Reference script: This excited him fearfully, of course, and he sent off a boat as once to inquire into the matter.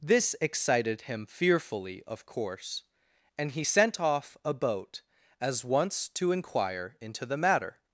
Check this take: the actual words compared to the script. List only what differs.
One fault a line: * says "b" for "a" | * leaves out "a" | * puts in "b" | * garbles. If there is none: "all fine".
all fine